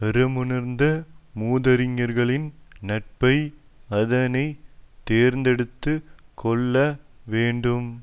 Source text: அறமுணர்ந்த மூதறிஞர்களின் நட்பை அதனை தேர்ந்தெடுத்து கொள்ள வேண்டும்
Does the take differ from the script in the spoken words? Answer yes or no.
no